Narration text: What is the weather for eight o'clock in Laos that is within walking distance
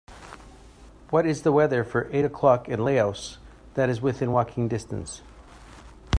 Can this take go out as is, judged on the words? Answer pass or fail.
pass